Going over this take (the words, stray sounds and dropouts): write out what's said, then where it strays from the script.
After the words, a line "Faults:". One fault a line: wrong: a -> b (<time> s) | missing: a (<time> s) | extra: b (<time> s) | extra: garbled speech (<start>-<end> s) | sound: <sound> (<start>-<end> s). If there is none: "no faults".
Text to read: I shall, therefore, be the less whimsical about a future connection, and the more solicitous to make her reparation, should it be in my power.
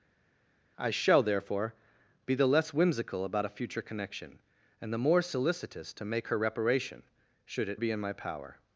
I shall, therefore, be the less whimsical about a future connection, and the more solicitous to make her reparation, should it be in my power.
Faults:
no faults